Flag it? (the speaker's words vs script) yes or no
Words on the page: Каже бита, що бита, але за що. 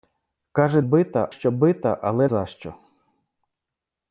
no